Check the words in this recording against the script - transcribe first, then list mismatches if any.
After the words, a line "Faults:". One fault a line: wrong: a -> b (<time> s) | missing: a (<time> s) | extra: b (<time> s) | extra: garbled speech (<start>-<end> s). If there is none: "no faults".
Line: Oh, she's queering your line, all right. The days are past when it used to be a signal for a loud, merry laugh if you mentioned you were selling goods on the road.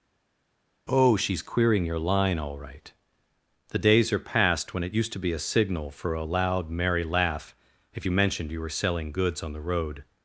Oh, she's queering your line, all right. The days are past when it used to be a signal for a loud, merry laugh if you mentioned you were selling goods on the road.
Faults:
no faults